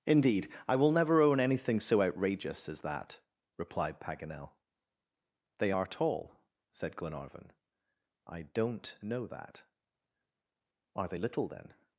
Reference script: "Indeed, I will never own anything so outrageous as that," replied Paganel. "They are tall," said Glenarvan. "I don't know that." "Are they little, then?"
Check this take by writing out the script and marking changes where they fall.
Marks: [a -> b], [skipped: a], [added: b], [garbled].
"Indeed, I will never own anything so outrageous as that," replied Paganel. "They are tall," said Glenarvan. "I don't know that." "Are they little, then?"